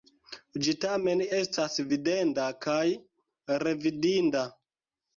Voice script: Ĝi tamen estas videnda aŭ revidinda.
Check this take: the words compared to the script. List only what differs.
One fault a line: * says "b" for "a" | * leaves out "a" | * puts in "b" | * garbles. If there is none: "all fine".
* says "kaj" for "aŭ"